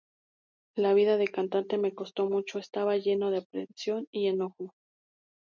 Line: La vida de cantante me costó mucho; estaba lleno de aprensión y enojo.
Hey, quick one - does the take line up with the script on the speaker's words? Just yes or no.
yes